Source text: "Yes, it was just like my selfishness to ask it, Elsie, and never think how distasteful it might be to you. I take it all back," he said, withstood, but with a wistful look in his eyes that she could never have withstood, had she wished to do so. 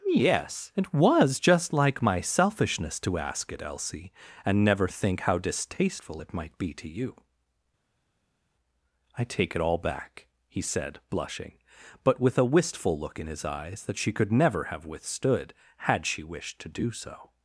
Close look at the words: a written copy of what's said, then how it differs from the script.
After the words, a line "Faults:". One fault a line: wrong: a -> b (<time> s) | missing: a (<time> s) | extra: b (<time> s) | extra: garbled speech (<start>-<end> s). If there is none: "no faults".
"Yes, it was just like my selfishness to ask it, Elsie, and never think how distasteful it might be to you. I take it all back," he said, blushing, but with a wistful look in his eyes that she could never have withstood, had she wished to do so.
Faults:
wrong: withstood -> blushing (11.1 s)